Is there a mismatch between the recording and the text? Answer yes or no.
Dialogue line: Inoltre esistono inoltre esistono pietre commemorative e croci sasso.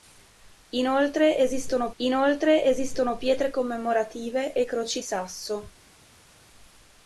no